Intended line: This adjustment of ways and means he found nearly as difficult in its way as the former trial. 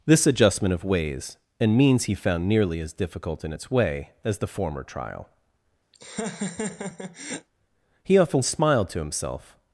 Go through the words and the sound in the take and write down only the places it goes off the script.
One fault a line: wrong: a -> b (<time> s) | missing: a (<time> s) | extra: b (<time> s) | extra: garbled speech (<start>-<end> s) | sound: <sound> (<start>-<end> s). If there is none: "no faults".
sound: laugh (5.9-7.5 s)
extra: He often smiled to himself (8.0 s)